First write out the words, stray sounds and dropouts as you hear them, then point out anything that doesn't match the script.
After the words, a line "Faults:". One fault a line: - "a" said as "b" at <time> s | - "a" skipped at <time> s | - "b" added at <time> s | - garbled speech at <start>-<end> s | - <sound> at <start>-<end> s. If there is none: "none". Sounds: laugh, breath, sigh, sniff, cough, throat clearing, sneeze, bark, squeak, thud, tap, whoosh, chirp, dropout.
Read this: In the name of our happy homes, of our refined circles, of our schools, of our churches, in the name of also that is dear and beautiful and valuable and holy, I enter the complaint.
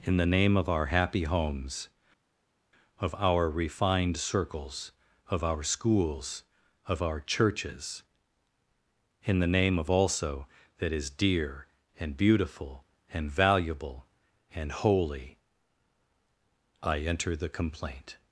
In the name of our happy homes, of our refined circles, of our schools, of our churches, in the name of also that is dear and beautiful and valuable and holy, I enter the complaint.
Faults:
none